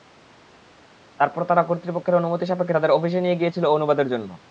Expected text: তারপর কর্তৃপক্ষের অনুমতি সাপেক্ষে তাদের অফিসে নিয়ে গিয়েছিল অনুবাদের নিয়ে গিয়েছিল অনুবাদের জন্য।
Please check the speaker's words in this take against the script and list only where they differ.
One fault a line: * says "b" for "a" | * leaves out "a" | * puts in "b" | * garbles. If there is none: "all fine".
* puts in "তারা"
* leaves out "নিয়ে গিয়েছিল অনুবাদের"